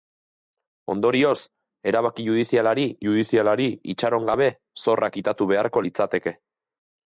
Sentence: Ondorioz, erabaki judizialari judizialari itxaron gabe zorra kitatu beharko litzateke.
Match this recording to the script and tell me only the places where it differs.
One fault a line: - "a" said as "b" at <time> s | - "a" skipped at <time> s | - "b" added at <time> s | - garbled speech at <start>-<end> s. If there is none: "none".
none